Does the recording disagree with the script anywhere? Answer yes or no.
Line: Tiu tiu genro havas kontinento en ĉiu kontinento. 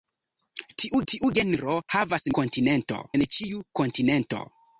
no